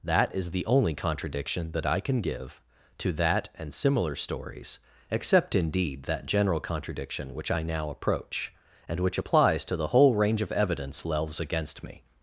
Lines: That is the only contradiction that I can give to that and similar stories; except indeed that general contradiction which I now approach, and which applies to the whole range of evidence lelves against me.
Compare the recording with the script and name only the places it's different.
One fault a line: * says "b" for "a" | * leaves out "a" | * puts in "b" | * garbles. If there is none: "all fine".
all fine